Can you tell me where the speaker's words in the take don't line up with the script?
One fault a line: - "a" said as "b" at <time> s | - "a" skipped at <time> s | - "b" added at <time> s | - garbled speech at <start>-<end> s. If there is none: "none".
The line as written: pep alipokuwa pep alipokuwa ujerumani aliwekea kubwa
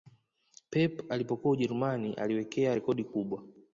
- "pep alipokuwa" skipped at 1.5 s
- "rekodi" added at 2.7 s